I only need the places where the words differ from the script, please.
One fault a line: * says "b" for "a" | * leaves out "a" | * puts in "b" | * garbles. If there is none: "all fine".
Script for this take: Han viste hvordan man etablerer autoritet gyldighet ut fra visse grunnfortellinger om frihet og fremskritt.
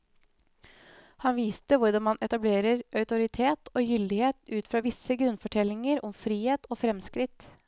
* puts in "og"